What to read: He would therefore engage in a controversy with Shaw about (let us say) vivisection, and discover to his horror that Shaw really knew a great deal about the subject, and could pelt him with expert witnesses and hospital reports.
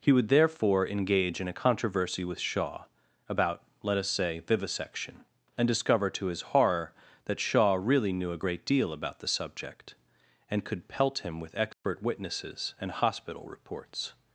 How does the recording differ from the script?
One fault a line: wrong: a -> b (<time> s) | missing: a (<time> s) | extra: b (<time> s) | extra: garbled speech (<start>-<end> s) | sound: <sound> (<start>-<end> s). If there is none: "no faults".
sound: dropout (11.7-11.8 s)